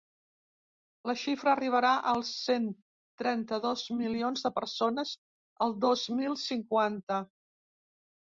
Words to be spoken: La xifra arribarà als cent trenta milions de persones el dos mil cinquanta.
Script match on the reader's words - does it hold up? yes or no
no